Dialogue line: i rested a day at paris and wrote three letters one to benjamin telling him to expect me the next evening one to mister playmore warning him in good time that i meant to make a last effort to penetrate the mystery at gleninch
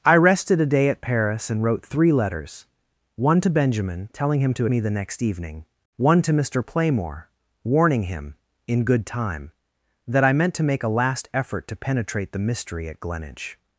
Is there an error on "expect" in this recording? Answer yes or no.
yes